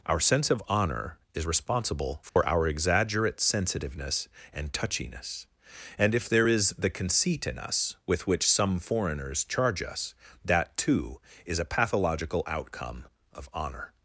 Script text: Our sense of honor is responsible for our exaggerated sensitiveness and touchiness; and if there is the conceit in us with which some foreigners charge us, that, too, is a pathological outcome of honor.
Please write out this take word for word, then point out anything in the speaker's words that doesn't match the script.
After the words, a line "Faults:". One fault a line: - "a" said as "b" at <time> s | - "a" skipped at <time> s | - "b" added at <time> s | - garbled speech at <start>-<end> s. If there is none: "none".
Our sense of honor is responsible for our exaggerate sensitiveness and touchiness; and if there is the conceit in us with which some foreigners charge us, that, too, is a pathological outcome of honor.
Faults:
- "exaggerated" said as "exaggerate" at 2.7 s